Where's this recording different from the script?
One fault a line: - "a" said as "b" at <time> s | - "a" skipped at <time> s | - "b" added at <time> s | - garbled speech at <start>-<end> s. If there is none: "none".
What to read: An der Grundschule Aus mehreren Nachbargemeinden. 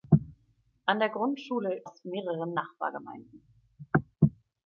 none